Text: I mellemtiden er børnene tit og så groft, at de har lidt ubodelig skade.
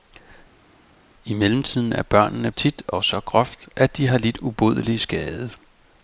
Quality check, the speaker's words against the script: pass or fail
pass